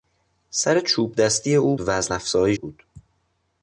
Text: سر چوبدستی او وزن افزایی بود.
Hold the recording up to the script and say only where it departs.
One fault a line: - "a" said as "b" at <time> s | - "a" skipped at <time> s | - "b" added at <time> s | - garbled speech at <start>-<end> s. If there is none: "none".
none